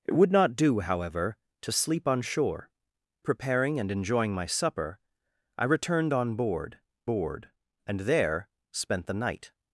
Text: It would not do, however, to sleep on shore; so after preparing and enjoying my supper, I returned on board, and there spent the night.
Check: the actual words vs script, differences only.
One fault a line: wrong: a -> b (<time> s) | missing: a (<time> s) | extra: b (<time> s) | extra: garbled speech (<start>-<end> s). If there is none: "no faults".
missing: so after (2.7 s)
extra: board (7.0 s)